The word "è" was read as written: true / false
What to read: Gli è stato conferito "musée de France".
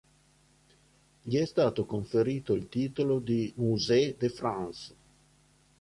true